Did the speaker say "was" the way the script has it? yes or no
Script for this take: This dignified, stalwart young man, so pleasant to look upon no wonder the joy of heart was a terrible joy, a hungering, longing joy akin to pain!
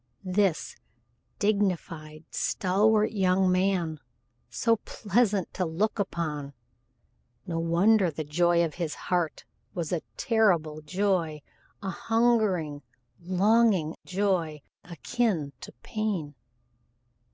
yes